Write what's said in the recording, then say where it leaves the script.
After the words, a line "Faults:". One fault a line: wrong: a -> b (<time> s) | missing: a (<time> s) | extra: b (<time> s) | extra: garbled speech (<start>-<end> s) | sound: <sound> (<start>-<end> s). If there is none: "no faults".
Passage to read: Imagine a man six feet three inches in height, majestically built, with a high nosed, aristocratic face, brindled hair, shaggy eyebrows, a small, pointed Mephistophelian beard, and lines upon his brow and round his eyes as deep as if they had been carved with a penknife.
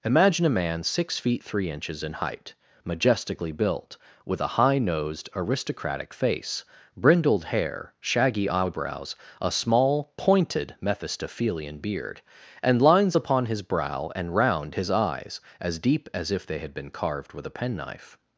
Imagine a man six feet three inches in height, majestically built, with a high nosed, aristocratic face, brindled hair, shaggy eyebrows, a small, pointed Mephistophelian beard, and lines upon his brow and round his eyes as deep as if they had been carved with a penknife.
Faults:
no faults